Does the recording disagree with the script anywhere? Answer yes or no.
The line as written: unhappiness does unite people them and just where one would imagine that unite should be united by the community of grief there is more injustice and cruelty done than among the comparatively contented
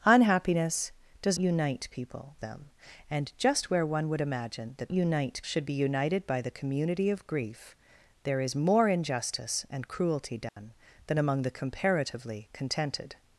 no